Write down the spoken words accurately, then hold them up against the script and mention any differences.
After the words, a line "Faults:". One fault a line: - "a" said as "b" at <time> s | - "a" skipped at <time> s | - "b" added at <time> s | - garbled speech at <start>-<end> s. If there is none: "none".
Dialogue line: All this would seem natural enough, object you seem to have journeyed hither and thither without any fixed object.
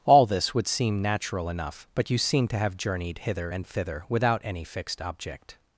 All this would seem natural enough, but you seem to have journeyed hither and thither without any fixed object.
Faults:
- "object" said as "but" at 1.9 s